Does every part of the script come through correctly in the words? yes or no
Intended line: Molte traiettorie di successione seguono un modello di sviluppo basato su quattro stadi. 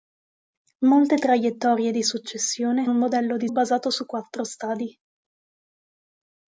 no